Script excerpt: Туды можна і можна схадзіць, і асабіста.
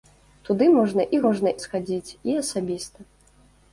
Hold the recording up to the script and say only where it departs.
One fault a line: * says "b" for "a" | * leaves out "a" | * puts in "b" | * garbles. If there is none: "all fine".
all fine